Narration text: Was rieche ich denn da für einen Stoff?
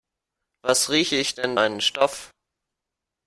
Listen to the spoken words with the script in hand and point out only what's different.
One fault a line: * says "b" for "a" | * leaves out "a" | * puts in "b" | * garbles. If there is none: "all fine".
* leaves out "da für"